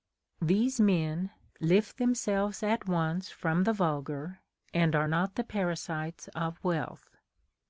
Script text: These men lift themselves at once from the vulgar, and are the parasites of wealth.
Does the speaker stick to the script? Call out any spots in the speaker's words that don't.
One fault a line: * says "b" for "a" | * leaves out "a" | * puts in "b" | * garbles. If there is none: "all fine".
* puts in "not"